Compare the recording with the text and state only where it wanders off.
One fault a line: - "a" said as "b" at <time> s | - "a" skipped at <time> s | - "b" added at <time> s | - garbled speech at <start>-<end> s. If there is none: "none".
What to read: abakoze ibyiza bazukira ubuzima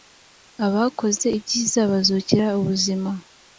none